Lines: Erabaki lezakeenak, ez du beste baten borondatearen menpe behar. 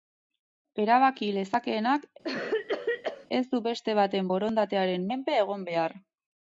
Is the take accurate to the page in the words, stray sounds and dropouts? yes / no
no